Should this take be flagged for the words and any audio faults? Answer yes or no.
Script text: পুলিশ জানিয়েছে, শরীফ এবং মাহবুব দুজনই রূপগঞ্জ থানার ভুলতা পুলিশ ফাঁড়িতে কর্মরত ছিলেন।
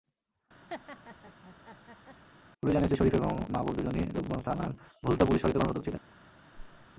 yes